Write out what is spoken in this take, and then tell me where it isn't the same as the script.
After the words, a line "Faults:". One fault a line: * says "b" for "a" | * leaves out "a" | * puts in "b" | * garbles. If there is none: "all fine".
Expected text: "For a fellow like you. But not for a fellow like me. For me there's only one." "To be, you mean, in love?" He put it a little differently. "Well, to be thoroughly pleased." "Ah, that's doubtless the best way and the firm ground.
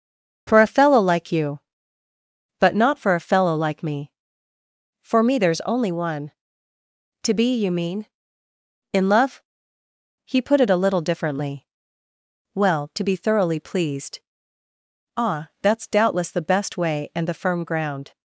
"For a fellow like you. But not for a fellow like me. For me there's only one." "To be, you mean, in love?" He put it a little differently. "Well, to be thoroughly pleased." "Ah, that's doubtless the best way and the firm ground.
Faults:
all fine